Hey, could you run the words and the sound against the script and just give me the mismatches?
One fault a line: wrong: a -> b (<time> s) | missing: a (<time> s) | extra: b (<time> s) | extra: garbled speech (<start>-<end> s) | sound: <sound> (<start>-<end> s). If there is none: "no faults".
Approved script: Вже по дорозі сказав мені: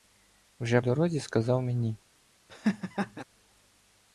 missing: по (0.8 s)
sound: laugh (2.5-3.2 s)